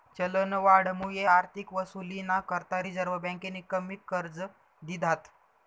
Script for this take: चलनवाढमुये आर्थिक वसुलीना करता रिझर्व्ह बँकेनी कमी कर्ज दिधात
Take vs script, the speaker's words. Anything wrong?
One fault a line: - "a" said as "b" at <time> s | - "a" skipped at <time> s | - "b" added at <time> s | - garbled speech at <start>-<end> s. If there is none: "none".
none